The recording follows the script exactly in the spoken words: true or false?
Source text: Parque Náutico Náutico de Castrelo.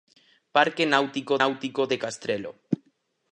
true